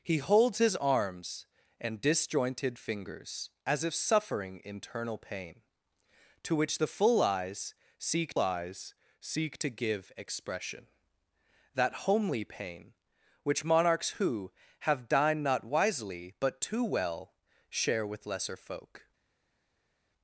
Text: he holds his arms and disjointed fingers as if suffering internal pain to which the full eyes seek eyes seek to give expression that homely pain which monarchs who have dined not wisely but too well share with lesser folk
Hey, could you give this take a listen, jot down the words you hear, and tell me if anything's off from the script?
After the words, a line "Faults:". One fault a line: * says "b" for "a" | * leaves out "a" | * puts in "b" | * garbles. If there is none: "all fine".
he holds his arms and disjointed fingers as if suffering internal pain to which the full eyes seek eyes seek to give expression that homely pain which monarchs who have dined not wisely but too well share with lesser folk
Faults:
all fine